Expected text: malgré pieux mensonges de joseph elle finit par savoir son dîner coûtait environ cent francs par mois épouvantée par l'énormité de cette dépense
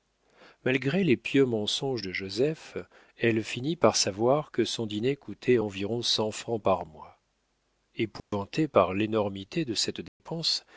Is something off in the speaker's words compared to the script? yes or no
yes